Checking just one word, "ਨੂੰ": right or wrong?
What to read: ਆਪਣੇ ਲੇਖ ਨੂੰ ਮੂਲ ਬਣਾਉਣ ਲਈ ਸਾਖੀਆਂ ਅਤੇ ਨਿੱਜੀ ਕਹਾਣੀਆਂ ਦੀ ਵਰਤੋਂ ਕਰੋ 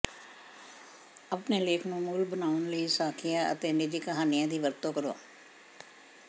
right